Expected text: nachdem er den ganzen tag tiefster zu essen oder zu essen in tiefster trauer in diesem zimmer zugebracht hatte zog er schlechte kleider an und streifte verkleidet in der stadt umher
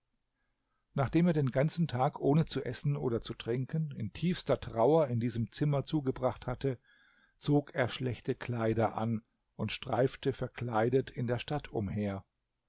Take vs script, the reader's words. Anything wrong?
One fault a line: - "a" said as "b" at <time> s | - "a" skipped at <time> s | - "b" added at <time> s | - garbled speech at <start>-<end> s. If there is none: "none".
- "tiefster" said as "ohne" at 2.2 s
- "essen" said as "trinken" at 3.3 s